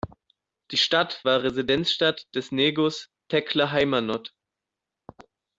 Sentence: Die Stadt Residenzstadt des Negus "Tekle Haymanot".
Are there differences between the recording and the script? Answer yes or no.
yes